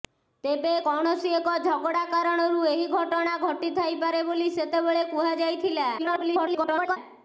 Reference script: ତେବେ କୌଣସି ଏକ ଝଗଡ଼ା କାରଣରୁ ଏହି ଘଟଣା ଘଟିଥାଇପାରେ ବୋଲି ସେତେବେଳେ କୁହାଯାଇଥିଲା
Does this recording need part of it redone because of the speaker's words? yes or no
yes